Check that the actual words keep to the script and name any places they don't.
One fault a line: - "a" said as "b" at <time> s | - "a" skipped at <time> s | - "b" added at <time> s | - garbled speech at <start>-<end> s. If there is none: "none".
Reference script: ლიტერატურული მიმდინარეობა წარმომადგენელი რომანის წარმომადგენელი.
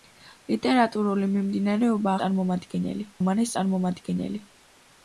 none